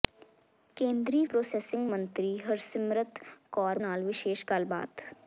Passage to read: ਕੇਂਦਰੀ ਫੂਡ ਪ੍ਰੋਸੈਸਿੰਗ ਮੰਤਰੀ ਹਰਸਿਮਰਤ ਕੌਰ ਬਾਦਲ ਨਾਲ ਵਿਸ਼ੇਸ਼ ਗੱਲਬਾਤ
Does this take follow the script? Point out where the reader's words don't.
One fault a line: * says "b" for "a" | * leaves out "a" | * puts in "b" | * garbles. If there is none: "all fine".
* leaves out "ਫੂਡ"
* leaves out "ਬਾਦਲ"